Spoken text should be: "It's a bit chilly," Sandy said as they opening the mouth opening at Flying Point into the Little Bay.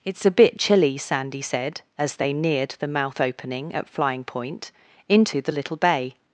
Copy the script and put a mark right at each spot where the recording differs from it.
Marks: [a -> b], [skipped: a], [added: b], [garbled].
"It's a bit chilly," Sandy said as they [opening -> neared] the mouth opening at Flying Point into the Little Bay.